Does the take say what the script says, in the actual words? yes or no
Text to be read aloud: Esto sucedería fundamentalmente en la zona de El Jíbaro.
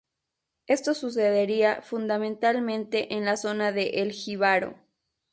yes